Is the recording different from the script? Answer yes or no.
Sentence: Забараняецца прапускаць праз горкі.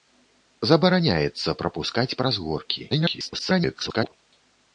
yes